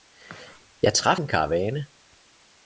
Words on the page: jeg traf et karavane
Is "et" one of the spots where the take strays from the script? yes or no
yes